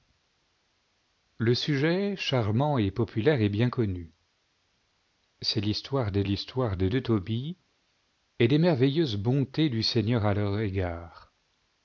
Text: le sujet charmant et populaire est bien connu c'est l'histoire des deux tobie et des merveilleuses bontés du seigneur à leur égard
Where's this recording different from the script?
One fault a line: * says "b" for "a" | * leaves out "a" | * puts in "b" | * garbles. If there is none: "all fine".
* puts in "l'histoire des"